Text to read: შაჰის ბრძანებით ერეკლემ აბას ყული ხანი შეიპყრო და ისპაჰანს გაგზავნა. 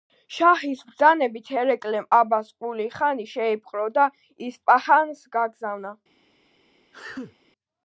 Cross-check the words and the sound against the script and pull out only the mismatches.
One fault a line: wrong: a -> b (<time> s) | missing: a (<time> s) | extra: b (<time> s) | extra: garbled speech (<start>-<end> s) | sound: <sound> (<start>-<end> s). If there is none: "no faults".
sound: sneeze (6.9-7.4 s)